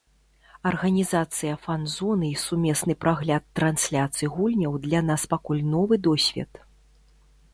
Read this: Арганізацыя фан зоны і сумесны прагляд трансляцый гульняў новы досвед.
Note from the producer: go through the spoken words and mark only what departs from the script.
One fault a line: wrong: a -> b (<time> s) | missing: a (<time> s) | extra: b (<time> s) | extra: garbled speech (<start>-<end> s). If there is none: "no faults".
extra: для нас пакуль (4.8 s)